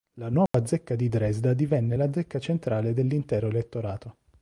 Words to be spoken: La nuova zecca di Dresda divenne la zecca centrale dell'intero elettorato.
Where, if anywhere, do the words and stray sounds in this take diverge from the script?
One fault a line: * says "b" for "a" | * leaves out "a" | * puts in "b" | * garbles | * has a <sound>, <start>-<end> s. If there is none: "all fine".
* has a dropout, 0.5-0.5 s